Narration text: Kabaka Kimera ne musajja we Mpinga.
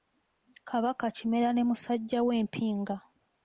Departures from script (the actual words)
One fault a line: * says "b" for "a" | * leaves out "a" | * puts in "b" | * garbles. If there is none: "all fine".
all fine